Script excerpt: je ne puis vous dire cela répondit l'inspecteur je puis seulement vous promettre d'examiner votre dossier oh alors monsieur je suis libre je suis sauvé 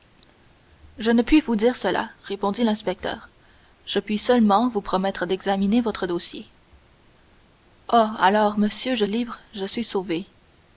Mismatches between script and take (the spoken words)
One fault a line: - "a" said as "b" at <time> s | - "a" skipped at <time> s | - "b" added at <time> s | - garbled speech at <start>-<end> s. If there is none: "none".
- "suis" skipped at 9.1 s